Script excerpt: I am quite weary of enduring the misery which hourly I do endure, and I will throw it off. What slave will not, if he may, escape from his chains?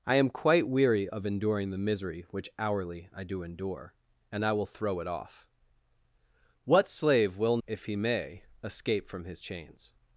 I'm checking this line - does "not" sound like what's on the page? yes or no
no